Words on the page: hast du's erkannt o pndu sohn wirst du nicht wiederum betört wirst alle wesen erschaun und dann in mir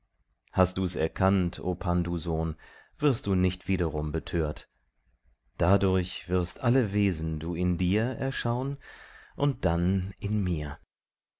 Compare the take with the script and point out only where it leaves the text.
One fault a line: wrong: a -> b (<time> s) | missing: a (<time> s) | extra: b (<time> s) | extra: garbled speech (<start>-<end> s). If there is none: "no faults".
extra: dadurch (5.6 s)
extra: du in dir (7.4 s)